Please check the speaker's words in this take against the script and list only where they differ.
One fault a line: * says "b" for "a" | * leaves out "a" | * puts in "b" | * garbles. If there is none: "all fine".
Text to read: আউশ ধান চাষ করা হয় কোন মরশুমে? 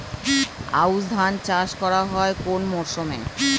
all fine